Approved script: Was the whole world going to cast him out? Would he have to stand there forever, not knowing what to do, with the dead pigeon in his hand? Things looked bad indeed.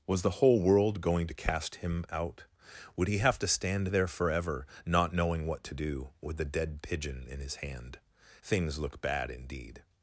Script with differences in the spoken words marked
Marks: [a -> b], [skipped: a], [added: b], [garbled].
Was the whole world going to cast him out? Would he have to stand there forever, not knowing what to do, with the dead pigeon in his hand? Things [looked -> look] bad indeed.